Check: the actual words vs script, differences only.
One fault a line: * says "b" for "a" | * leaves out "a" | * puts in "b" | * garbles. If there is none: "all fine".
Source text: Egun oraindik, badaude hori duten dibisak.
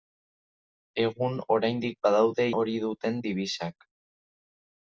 all fine